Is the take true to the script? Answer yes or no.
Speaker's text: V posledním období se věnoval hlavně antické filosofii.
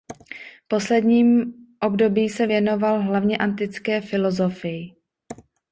yes